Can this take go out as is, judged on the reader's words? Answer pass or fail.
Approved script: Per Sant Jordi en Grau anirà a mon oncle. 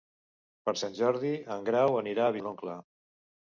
pass